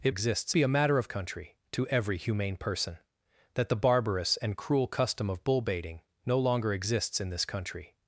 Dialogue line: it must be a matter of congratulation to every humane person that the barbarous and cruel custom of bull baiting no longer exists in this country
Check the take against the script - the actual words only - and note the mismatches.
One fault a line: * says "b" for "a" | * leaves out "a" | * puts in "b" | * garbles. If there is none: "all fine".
* says "exists" for "must"
* says "country" for "congratulation"